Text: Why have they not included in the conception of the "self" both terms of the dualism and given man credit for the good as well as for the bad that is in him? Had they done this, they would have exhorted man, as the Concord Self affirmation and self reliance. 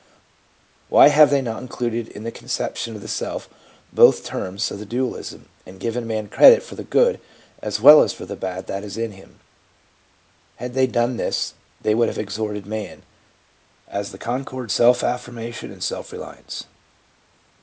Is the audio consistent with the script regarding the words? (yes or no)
yes